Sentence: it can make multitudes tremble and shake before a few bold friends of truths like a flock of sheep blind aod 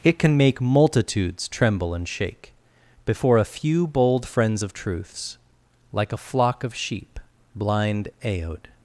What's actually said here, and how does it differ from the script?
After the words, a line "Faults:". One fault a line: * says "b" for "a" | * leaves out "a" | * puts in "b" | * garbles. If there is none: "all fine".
it can make multitudes tremble and shake before a few bold friends of truths like a flock of sheep blind aod
Faults:
all fine